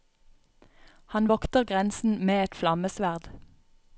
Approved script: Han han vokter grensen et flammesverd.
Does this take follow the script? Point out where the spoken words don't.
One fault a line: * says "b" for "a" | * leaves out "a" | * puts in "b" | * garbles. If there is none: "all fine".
* leaves out "han"
* puts in "med"